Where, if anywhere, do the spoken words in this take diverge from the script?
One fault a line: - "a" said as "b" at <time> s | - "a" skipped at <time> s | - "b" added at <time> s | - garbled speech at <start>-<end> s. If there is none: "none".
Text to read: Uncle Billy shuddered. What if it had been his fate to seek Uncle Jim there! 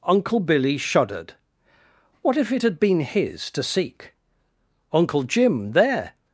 - "fate" skipped at 3.5 s